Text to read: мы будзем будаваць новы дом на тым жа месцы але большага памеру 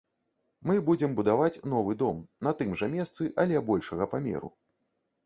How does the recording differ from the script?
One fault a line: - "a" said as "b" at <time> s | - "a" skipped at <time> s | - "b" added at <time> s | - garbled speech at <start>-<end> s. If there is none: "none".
none